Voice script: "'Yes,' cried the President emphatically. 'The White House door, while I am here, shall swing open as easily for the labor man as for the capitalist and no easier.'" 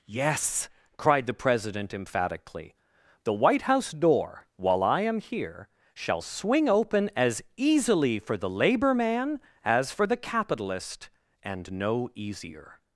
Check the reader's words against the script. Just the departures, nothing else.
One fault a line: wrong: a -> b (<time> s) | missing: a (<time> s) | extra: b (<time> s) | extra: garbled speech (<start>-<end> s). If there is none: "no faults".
no faults